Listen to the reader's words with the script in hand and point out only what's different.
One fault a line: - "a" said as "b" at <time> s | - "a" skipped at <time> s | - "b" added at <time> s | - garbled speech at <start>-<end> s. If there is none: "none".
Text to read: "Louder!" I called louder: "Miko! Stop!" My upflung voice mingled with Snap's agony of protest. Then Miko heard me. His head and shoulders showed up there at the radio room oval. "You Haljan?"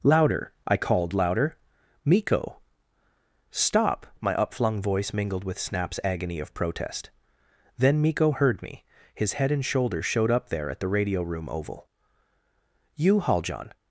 none